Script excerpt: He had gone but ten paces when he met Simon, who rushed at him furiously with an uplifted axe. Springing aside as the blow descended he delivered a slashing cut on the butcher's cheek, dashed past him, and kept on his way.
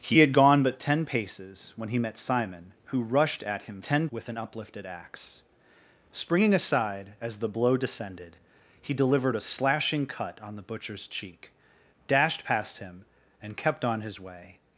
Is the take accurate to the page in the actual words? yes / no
no